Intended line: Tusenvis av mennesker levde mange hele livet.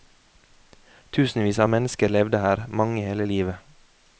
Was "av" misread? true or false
false